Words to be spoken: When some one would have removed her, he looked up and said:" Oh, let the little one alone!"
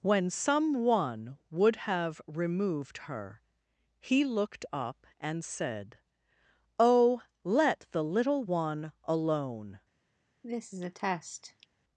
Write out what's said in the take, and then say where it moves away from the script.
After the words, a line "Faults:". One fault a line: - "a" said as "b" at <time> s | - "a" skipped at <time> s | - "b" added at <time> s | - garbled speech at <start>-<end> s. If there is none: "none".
When some one would have removed her, he looked up and said:" Oh, let the little one alone!"
Faults:
none